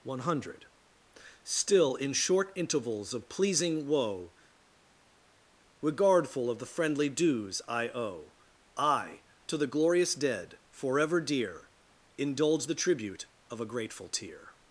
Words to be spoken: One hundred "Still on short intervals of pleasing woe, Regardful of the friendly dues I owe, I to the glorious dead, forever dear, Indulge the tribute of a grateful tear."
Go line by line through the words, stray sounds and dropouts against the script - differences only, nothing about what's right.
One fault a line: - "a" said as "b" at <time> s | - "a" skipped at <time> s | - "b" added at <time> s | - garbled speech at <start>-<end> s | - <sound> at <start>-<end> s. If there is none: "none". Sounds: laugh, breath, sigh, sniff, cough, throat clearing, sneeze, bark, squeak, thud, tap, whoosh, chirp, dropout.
- "on" said as "in" at 1.9 s